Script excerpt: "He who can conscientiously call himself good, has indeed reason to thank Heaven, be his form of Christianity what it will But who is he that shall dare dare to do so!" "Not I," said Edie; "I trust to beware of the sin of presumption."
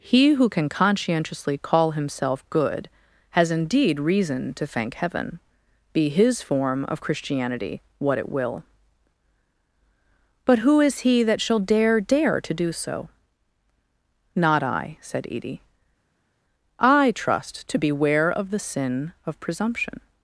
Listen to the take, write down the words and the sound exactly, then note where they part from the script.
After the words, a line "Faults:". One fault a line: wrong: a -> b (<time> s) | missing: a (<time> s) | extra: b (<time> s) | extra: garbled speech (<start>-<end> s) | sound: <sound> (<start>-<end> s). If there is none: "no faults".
"He who can conscientiously call himself good, has indeed reason to thank Heaven, be his form of Christianity what it will But who is he that shall dare dare to do so!" "Not I," said Edie; "I trust to beware of the sin of presumption."
Faults:
no faults